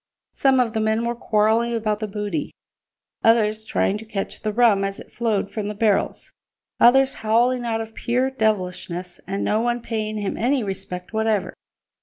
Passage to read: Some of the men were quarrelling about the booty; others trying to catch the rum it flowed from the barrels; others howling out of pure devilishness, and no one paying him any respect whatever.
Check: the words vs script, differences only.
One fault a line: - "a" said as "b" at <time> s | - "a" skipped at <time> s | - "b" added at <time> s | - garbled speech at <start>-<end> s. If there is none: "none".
- "as" added at 4.8 s